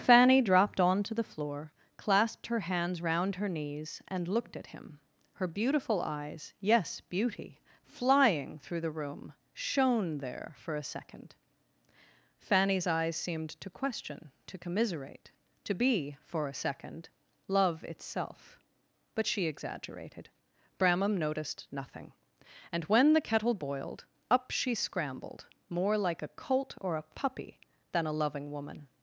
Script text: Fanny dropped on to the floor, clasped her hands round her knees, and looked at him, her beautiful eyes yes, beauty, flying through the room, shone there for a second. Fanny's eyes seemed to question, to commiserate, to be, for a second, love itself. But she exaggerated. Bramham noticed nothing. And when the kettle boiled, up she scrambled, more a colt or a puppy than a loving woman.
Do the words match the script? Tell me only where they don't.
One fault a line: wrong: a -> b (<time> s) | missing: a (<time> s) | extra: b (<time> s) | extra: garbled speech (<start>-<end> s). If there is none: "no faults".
extra: like (26.0 s)